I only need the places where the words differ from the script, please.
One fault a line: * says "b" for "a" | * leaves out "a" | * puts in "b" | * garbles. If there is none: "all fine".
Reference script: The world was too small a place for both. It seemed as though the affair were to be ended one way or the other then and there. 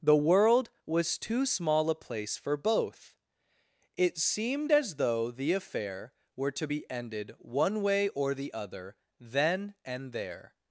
all fine